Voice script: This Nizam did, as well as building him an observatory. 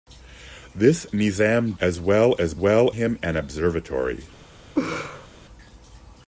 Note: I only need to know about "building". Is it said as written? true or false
false